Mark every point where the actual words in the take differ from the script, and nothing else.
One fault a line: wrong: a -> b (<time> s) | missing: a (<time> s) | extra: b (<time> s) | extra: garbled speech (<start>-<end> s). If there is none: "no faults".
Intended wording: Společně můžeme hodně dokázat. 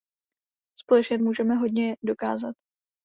no faults